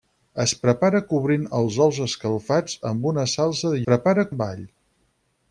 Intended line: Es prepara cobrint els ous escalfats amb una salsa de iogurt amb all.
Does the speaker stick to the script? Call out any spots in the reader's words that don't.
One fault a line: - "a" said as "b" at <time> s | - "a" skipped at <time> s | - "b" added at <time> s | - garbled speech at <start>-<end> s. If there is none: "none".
- "iogurt" said as "prepara" at 3.8 s